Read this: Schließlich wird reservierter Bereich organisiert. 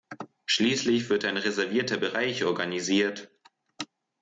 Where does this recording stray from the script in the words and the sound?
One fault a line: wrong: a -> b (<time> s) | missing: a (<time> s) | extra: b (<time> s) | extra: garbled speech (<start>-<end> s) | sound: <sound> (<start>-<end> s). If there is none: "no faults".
extra: ein (1.2 s)